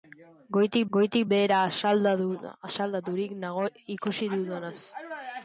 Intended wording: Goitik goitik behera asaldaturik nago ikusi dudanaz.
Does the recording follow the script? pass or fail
pass